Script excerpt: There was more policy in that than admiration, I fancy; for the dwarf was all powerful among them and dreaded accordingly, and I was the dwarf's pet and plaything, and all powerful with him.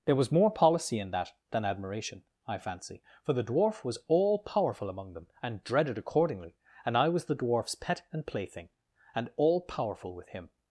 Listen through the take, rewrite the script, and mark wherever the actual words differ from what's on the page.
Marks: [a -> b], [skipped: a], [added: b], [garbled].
There was more policy in that than admiration, I fancy; for the dwarf was all powerful among them and dreaded accordingly, and I was the dwarf's pet and plaything, and all powerful with him.